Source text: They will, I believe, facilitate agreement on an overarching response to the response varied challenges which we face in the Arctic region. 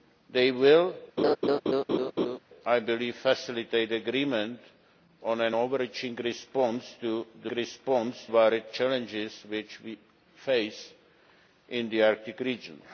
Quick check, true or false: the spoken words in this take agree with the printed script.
true